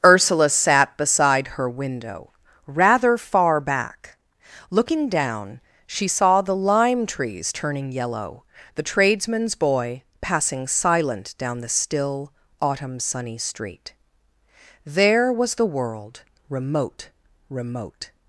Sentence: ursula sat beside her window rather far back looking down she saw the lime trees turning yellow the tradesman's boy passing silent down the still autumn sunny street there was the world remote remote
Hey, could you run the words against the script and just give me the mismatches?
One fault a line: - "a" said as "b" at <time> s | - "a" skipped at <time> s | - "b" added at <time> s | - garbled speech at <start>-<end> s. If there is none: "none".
none